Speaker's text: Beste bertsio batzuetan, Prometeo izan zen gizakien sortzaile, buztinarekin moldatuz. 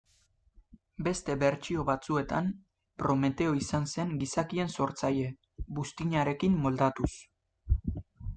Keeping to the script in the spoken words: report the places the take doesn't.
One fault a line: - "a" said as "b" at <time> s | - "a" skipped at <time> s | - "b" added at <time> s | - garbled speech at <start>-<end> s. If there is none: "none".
none